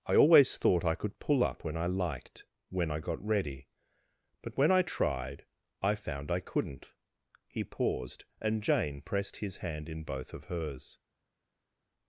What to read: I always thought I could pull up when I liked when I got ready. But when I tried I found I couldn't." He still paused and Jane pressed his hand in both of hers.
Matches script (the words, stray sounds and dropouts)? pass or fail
fail